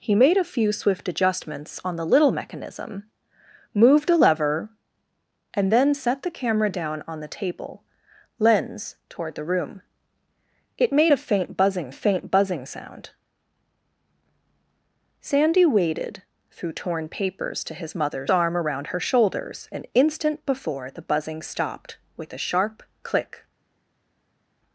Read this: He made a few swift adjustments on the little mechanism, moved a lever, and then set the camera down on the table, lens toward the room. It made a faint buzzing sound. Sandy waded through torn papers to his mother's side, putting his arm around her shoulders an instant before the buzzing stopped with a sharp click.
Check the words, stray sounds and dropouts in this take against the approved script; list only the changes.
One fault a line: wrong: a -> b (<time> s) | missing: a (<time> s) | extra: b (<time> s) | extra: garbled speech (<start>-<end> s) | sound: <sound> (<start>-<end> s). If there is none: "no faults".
extra: faint buzzing (11.9 s)
missing: side putting his (18.3 s)